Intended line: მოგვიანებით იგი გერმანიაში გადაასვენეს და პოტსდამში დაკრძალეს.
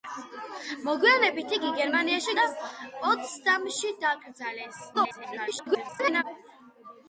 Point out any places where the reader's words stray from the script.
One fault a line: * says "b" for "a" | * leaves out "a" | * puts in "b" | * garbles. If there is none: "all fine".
* leaves out "გადაასვენეს"
* garbles